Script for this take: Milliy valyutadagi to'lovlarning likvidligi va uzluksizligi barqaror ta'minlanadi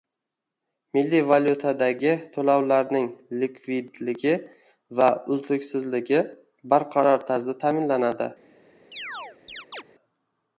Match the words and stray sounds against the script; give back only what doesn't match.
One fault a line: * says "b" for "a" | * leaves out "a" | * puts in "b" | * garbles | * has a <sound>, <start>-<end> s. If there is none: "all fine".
* puts in "tarzda"
* has a chirp, 8.9-9.8 s